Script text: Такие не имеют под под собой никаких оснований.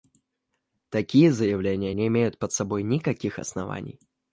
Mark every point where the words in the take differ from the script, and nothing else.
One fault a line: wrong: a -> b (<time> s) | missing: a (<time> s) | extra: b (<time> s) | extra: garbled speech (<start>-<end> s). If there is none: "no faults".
extra: заявления (1.3 s)
missing: под (2.5 s)